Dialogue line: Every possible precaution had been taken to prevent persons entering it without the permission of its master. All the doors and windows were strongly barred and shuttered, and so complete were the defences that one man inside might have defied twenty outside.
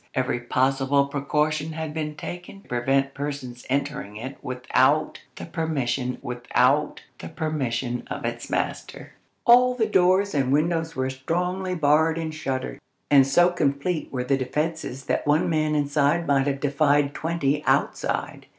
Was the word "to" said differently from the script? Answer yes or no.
yes